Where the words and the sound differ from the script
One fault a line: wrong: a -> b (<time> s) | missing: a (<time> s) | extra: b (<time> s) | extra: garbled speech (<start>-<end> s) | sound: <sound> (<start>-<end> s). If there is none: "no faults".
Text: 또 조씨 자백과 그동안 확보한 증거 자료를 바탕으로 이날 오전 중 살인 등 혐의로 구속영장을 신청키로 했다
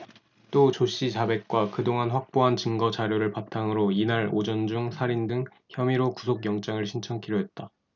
no faults